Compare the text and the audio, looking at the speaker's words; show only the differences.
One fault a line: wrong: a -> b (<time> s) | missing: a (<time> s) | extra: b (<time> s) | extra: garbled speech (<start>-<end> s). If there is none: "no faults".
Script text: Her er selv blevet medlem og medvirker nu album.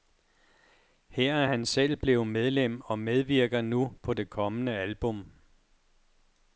extra: han (1.4 s)
extra: på det kommende (4.0 s)